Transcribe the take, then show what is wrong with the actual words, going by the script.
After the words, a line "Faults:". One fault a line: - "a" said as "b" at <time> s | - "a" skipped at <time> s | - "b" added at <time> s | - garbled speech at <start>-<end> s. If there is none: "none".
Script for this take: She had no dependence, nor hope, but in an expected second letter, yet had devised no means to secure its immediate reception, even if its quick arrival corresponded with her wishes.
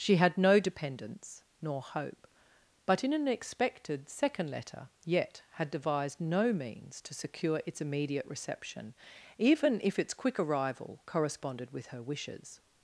She had no dependence, nor hope, but in an expected second letter, yet had devised no means to secure its immediate reception, even if its quick arrival corresponded with her wishes.
Faults:
none